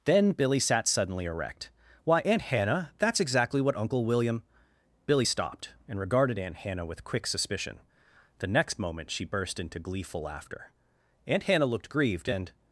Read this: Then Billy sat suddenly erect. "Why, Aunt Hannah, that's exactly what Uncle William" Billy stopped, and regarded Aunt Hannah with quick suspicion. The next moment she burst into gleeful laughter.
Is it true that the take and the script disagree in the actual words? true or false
true